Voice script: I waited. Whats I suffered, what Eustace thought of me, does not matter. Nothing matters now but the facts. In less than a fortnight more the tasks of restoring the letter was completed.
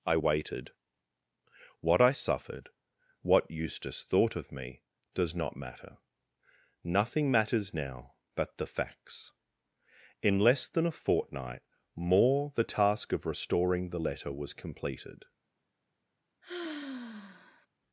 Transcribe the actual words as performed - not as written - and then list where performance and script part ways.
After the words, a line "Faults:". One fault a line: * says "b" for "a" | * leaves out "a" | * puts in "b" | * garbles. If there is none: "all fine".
I waited. What I suffered, what Eustace thought of me, does not matter. Nothing matters now but the facts. In less than a fortnight more the task of restoring the letter was completed.
Faults:
* says "What" for "Whats"
* says "task" for "tasks"